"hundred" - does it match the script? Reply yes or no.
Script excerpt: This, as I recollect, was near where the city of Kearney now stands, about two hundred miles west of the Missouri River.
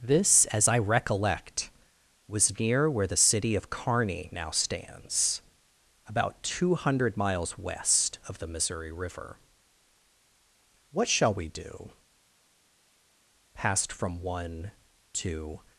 yes